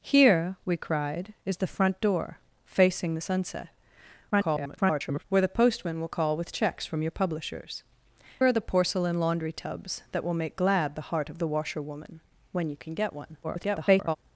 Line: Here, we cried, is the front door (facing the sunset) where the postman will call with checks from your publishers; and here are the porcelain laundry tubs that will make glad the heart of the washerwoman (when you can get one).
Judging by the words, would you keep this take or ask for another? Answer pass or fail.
fail